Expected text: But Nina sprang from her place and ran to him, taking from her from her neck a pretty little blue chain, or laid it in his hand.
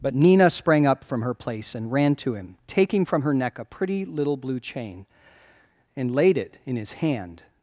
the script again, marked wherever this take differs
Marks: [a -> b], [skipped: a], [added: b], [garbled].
But Nina sprang [added: up] from her place and ran to him, taking from her [skipped: from her] neck a pretty little blue chain, [or -> and] laid it in his hand.